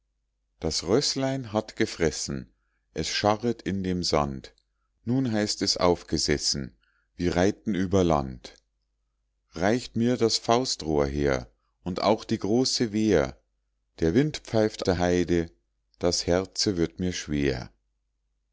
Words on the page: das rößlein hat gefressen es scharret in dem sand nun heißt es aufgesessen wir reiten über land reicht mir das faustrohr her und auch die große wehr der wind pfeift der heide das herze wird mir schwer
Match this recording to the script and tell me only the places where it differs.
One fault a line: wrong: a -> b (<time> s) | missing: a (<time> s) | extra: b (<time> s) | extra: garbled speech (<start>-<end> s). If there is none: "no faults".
no faults